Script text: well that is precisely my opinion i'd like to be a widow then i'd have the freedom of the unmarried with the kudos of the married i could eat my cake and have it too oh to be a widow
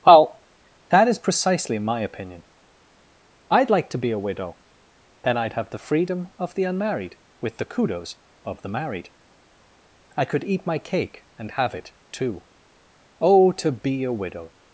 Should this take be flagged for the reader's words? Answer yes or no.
no